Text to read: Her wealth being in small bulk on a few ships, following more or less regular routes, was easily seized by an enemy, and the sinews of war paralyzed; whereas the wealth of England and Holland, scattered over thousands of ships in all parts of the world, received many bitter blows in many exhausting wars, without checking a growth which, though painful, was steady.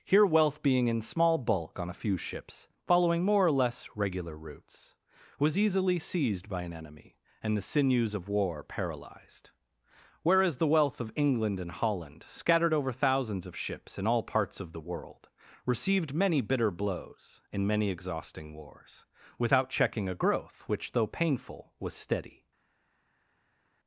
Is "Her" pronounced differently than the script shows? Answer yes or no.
yes